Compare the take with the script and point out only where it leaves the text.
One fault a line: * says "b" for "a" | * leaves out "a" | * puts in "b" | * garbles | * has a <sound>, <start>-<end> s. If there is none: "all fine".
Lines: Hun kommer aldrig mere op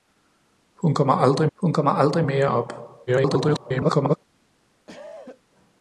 * puts in "hun kommer aldrig"
* garbles
* has a cough, 4.9-5.4 s